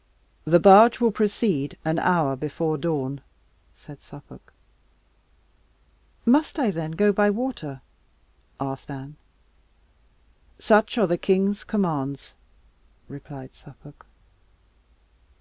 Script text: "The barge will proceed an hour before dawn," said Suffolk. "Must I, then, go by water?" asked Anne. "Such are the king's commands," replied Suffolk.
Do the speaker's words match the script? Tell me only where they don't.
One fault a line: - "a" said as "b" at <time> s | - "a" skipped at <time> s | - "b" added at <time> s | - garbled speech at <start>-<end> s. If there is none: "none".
none